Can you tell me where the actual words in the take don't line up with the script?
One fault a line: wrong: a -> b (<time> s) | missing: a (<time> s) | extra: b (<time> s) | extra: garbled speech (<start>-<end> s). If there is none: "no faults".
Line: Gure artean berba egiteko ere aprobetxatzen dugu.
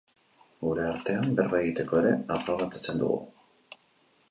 no faults